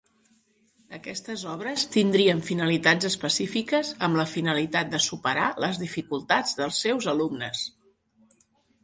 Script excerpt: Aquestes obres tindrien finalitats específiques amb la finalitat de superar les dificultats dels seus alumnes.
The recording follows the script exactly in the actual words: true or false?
true